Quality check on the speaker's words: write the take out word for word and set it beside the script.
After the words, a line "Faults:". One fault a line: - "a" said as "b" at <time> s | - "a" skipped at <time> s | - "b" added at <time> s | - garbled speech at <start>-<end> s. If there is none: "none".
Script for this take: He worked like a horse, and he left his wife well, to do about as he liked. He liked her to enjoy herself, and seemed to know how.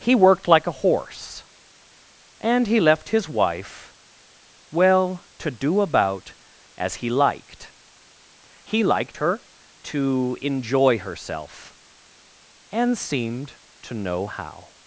He worked like a horse, and he left his wife well, to do about as he liked. He liked her to enjoy herself, and seemed to know how.
Faults:
none